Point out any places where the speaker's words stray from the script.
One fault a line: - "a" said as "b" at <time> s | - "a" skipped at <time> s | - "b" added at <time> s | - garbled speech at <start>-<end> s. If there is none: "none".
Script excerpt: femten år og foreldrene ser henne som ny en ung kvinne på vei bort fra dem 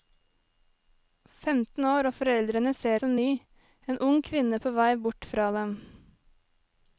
- "henne" skipped at 3.0 s